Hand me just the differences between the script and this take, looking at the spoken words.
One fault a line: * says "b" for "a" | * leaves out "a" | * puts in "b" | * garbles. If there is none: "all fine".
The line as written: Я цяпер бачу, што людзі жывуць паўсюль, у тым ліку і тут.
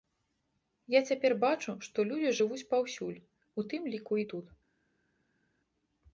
all fine